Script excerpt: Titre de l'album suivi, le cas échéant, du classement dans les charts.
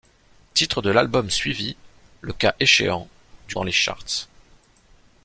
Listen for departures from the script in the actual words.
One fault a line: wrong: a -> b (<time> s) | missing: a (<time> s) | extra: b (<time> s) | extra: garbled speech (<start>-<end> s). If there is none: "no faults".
missing: classement (3.5 s)